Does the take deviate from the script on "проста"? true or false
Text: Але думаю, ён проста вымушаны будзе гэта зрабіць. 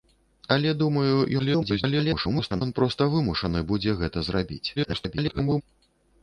false